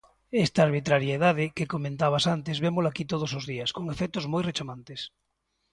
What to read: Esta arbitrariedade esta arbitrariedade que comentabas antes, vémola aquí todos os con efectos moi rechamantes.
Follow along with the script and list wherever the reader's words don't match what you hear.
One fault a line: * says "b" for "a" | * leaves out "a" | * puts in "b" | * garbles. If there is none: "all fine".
* leaves out "esta arbitrariedade"
* puts in "días"